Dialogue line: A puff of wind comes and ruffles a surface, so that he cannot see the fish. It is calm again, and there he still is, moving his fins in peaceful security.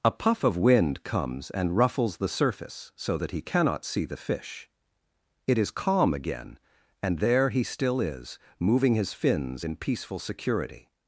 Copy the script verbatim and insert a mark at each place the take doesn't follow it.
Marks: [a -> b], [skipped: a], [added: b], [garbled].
A puff of wind comes and ruffles [a -> the] surface, so that he cannot see the fish. It is calm again, and there he still is, moving his fins in peaceful security.